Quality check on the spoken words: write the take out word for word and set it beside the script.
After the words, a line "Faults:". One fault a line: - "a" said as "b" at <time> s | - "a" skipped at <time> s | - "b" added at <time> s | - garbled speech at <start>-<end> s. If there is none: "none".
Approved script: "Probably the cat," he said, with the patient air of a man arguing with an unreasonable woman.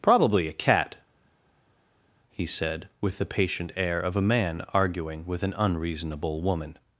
"Probably a cat," he said, with the patient air of a man arguing with an unreasonable woman.
Faults:
- "the" said as "a" at 0.5 s